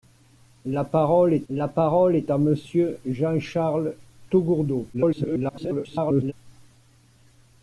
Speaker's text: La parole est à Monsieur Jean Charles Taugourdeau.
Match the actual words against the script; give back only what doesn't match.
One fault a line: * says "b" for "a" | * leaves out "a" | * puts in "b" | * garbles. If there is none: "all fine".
* puts in "la parole est"
* garbles